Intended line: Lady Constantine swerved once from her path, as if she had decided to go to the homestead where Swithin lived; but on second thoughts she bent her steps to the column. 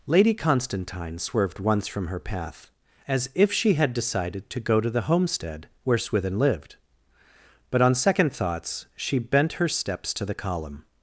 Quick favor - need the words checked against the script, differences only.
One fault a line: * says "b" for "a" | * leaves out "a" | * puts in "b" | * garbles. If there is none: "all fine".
all fine